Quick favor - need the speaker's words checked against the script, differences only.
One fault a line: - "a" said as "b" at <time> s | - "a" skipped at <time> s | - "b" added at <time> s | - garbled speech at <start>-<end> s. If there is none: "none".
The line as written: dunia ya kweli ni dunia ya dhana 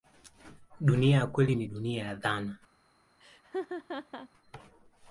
none